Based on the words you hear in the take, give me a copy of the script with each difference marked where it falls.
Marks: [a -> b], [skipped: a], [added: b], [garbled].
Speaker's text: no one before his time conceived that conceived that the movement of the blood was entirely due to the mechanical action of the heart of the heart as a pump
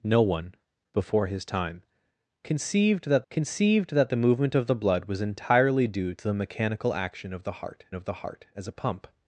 no one before his time conceived that conceived that the movement of the blood was entirely due to the mechanical action of the heart of the heart as a pump